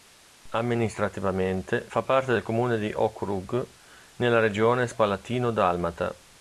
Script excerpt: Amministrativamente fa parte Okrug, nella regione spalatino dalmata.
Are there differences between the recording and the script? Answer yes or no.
yes